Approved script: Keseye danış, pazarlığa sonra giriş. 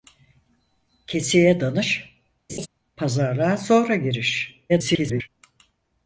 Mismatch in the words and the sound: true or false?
true